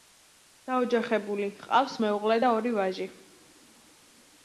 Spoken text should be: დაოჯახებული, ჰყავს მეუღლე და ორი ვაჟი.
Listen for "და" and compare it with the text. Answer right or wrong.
right